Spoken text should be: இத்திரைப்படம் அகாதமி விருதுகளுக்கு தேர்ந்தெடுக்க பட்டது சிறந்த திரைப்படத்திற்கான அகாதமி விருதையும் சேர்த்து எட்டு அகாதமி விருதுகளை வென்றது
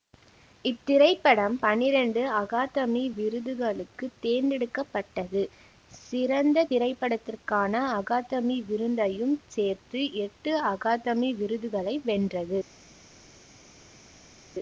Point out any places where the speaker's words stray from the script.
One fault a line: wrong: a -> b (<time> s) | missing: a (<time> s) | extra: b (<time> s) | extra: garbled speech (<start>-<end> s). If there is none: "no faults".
extra: பன்னிரண்டு (1.6 s)